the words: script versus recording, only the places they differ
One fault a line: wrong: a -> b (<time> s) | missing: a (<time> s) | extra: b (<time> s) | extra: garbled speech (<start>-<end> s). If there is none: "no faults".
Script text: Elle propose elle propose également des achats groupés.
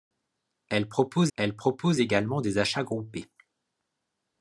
no faults